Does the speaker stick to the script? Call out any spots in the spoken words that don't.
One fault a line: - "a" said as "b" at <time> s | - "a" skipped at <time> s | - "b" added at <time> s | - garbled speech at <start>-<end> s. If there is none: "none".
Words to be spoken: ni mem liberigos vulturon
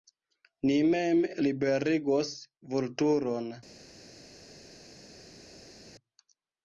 none